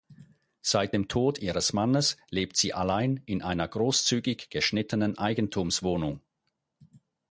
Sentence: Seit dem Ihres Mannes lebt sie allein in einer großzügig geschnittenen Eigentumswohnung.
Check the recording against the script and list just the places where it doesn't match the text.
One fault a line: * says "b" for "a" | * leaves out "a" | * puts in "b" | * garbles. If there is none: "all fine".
* puts in "Tod"